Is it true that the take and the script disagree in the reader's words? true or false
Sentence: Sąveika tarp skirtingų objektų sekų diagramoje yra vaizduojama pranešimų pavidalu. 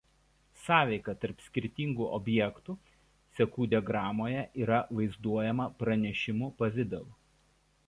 false